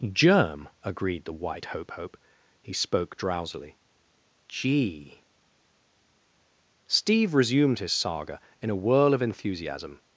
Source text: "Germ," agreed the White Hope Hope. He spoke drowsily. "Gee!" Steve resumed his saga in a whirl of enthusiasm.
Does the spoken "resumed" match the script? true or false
true